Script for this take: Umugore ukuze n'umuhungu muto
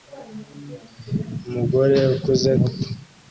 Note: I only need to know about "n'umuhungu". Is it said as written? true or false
false